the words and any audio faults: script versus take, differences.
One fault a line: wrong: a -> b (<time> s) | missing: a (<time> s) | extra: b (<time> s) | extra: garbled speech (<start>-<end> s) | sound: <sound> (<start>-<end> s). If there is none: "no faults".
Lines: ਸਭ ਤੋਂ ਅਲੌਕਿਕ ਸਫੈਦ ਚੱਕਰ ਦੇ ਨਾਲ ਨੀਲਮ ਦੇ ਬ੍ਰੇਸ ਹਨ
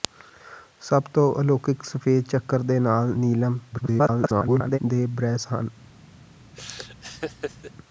extra: garbled speech (3.7-4.8 s)
sound: laugh (6.5-7.7 s)